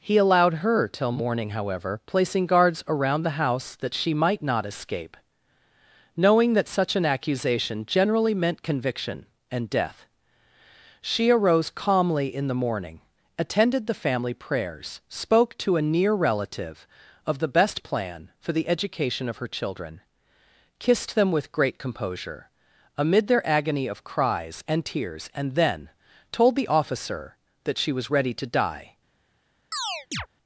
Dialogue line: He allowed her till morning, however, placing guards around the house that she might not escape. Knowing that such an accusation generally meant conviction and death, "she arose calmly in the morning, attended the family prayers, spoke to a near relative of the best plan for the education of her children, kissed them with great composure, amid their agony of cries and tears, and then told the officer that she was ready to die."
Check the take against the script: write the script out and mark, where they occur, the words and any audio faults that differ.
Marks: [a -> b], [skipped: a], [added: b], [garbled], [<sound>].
He allowed her till morning, however, placing guards around the house that she might not escape. Knowing that such an accusation generally meant conviction and death, "she arose calmly in the morning, attended the family prayers, spoke to a near relative of the best plan for the education of her children, kissed them with great composure, amid their agony of cries and tears, and then told the officer that she was ready to die." [chirp]